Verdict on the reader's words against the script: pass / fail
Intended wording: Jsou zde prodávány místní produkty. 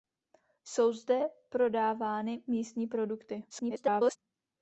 fail